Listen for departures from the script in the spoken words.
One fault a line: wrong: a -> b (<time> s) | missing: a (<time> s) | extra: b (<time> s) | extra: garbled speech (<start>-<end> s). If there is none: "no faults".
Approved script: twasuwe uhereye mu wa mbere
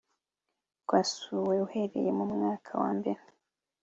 extra: mwaka (2.3 s)